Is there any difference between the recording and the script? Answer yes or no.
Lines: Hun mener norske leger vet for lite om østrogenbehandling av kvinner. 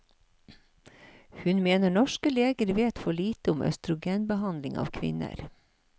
no